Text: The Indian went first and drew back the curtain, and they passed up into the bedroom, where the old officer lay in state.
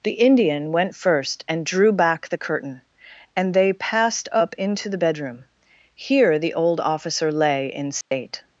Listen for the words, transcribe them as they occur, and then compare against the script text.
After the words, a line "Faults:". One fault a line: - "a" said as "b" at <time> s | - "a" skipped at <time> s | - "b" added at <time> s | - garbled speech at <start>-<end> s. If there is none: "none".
The Indian went first and drew back the curtain, and they passed up into the bedroom, here the old officer lay in state.
Faults:
- "where" said as "here" at 5.9 s